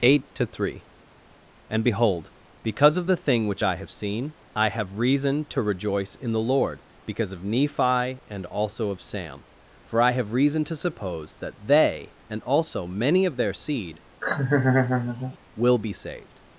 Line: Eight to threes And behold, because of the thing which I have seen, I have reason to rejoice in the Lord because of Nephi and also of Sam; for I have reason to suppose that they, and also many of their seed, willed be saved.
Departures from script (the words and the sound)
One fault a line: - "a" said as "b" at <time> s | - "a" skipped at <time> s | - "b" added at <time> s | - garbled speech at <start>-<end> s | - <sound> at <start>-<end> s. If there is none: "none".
- "threes" said as "three" at 0.5 s
- laugh at 14.2-15.4 s
- "willed" said as "will" at 15.5 s